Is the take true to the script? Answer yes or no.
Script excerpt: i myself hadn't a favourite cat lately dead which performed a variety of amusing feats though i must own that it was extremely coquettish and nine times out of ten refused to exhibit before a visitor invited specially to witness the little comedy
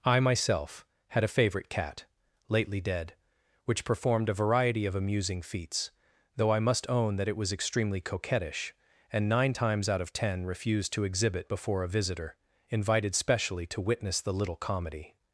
no